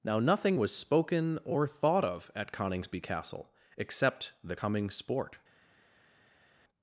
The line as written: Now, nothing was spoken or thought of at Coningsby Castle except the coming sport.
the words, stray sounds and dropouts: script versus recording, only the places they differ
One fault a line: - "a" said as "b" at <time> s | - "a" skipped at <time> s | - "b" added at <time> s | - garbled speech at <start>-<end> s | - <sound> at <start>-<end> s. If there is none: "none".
none